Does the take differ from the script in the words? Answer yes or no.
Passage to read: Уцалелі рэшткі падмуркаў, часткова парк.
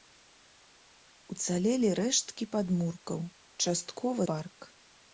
no